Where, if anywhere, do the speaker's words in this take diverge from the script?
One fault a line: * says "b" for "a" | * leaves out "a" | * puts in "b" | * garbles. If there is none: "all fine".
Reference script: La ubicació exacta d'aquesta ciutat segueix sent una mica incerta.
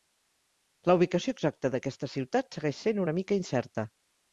all fine